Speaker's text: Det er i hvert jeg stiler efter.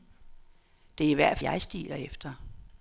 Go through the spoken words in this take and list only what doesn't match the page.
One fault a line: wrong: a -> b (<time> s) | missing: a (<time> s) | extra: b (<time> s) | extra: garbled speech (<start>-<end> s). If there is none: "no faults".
no faults